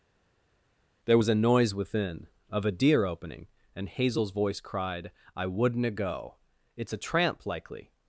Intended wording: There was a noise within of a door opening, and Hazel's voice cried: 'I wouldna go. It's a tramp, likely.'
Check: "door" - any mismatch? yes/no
yes